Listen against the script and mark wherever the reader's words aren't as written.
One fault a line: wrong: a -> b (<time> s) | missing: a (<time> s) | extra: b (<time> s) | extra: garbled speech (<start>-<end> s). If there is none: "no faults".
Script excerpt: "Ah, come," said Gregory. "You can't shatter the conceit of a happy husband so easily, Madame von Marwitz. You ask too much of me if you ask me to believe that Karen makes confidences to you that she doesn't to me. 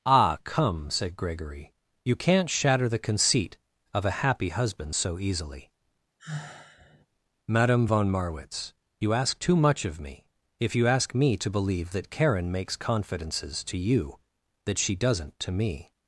no faults